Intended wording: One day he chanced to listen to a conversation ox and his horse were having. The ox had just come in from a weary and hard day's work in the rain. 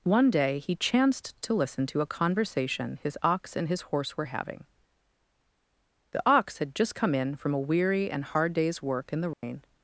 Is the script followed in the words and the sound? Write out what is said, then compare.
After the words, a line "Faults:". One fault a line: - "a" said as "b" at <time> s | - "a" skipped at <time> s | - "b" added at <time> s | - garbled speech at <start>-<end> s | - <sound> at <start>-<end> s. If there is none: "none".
One day he chanced to listen to a conversation his ox and his horse were having. The ox had just come in from a weary and hard day's work in the rain.
Faults:
- "his" added at 3.0 s
- dropout at 9.3-9.4 s